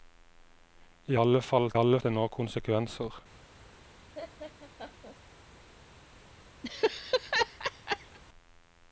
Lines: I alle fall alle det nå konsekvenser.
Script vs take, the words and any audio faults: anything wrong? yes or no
yes